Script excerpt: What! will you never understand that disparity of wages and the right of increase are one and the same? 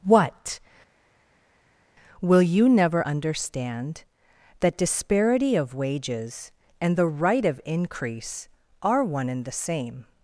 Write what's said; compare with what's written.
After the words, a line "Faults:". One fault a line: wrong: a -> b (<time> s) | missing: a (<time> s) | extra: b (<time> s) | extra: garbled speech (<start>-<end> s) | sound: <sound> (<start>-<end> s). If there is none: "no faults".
What! will you never understand that disparity of wages and the right of increase are one and the same?
Faults:
no faults